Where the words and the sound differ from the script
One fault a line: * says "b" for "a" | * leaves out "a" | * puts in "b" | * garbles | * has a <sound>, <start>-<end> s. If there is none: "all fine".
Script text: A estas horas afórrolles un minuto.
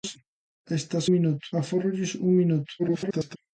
* says "minuto" for "horas"
* garbles